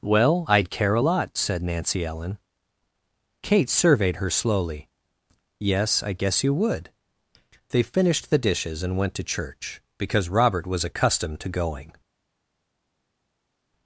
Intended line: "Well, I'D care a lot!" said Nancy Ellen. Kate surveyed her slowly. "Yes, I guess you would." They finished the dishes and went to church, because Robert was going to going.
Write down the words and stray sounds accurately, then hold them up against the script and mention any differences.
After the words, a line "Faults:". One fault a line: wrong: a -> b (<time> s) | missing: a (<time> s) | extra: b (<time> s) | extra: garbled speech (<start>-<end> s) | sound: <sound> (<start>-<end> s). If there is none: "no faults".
"Well, I'D care a lot!" said Nancy Ellen. Kate surveyed her slowly. "Yes, I guess you would." They finished the dishes and went to church, because Robert was accustomed to going.
Faults:
wrong: going -> accustomed (10.8 s)